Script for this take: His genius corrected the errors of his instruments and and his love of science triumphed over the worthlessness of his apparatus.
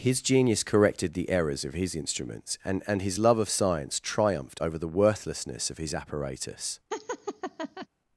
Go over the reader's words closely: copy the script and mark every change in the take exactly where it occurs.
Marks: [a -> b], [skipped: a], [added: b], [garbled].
His genius corrected the errors of his instruments and and his love of science triumphed over the worthlessness of his apparatus.